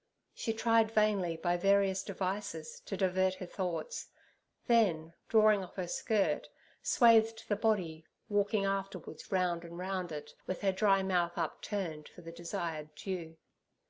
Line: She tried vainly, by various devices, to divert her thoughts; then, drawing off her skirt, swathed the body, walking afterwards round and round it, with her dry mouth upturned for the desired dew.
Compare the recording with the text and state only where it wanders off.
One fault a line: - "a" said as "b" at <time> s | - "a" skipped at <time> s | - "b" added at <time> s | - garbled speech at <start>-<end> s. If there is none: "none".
none